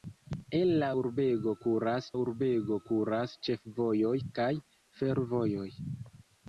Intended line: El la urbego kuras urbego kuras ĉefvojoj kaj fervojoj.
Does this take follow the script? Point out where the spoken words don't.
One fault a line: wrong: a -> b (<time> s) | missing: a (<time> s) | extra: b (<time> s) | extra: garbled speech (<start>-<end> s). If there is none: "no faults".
no faults